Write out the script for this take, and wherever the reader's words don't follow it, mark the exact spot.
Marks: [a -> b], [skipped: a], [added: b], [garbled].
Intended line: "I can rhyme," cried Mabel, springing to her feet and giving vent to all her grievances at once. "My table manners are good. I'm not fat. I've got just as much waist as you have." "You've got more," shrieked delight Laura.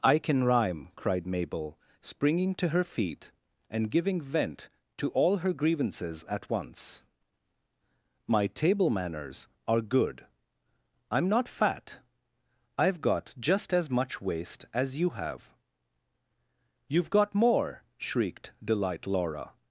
"I can rhyme," cried Mabel, springing to her feet and giving vent to all her grievances at once. "My table manners are good. I'm not fat. I've got just as much waist as you have." "You've got more," shrieked delight Laura.